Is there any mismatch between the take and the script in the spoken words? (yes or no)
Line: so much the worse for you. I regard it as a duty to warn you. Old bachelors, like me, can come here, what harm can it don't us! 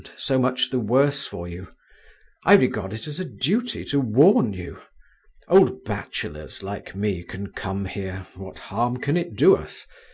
yes